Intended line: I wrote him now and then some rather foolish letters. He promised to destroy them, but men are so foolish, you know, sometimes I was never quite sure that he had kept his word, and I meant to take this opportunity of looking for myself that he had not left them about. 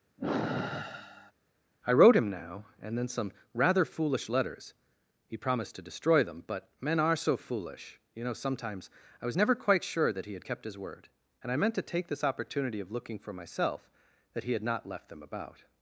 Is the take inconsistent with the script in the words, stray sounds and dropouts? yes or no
yes